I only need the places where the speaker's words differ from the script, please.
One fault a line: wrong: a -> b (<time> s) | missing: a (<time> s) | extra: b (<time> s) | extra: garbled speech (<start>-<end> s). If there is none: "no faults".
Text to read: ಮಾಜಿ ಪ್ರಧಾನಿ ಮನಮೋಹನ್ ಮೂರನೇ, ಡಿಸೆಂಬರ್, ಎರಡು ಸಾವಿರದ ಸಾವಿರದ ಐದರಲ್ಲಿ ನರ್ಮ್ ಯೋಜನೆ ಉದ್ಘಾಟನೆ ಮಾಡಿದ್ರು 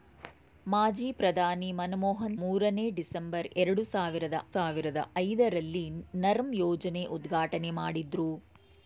no faults